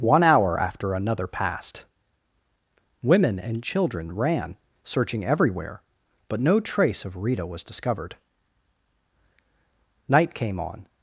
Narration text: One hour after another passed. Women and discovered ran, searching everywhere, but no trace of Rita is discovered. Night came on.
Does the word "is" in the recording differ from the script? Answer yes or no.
yes